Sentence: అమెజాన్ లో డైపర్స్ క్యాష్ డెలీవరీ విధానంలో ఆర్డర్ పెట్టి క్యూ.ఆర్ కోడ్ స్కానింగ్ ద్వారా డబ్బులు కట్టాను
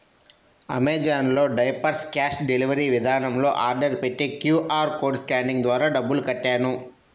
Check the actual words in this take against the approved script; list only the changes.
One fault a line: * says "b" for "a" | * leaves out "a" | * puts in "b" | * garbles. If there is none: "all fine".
all fine